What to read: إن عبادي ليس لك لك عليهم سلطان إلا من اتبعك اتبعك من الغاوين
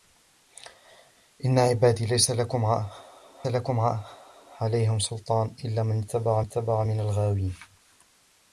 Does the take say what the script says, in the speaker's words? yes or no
yes